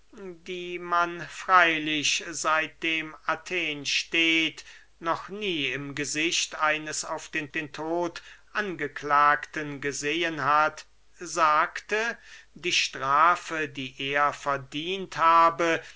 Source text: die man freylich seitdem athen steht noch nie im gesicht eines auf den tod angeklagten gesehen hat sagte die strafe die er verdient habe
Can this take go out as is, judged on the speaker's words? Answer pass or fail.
fail